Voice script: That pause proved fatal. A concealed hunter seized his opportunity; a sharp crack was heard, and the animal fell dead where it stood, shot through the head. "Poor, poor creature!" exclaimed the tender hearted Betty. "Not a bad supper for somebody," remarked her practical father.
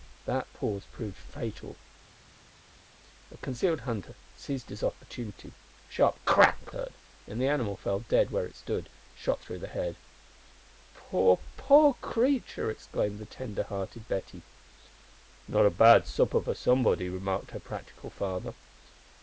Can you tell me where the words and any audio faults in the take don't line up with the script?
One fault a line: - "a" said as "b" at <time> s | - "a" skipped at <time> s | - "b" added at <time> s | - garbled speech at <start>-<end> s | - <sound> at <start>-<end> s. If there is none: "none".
- "was" skipped at 6.7 s